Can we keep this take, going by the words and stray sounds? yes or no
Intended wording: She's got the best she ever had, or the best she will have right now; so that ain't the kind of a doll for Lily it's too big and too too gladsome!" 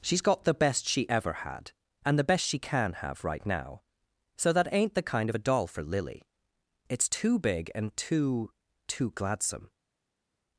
no